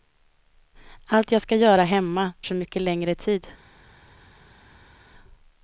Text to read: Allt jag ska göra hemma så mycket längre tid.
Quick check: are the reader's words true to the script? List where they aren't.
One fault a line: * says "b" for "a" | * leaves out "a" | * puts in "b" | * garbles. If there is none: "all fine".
all fine